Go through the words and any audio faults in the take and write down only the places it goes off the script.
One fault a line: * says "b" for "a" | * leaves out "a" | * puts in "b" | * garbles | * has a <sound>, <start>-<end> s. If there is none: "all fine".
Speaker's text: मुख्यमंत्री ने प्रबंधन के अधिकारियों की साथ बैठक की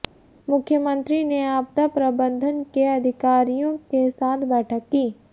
* puts in "आपदा"
* says "के" for "की"